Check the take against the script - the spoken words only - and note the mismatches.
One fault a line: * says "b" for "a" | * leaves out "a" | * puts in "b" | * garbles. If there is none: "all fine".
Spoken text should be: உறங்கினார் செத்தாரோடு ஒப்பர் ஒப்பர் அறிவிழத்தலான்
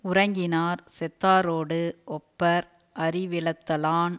* leaves out "ஒப்பர்"